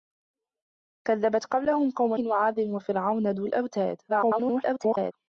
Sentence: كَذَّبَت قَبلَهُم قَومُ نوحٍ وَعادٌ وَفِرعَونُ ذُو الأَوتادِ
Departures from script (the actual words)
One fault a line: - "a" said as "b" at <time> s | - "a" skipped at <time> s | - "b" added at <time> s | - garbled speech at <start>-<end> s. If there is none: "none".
- "نوحٍ" skipped at 2.1 s
- garbled speech at 4.1-5.1 s